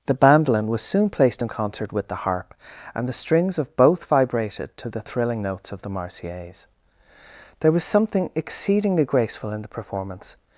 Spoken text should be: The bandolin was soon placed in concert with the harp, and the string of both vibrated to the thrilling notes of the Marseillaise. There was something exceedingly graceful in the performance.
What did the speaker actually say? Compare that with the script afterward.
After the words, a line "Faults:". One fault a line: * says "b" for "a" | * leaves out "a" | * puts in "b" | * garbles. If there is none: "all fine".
The bandolin was soon placed in concert with the harp, and the strings of both vibrated to the thrilling notes of the Marseillaise. There was something exceedingly graceful in the performance.
Faults:
* says "strings" for "string"